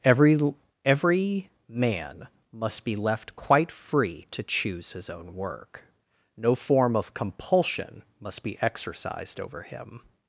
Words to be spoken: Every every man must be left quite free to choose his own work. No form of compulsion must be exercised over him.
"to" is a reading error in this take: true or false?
false